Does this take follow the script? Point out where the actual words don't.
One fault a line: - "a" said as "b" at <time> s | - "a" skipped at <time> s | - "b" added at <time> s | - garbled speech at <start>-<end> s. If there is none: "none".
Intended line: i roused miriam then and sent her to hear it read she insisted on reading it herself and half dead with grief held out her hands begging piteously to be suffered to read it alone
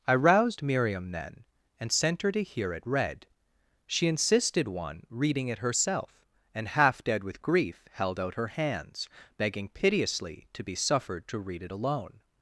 - "on" said as "one" at 4.7 s